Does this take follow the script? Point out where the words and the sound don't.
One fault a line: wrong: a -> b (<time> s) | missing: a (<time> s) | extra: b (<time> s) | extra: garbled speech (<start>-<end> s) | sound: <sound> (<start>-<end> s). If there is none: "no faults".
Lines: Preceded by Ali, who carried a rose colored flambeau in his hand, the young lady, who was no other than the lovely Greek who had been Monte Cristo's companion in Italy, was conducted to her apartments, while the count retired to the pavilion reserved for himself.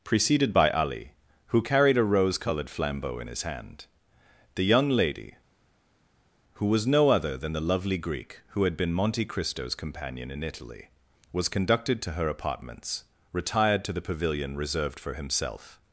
missing: while the count (13.0 s)